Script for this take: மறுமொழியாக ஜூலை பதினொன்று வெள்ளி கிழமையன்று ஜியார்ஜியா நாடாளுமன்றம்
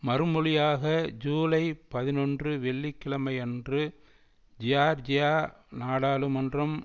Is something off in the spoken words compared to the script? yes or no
no